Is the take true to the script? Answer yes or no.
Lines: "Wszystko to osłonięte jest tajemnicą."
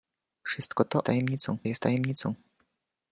no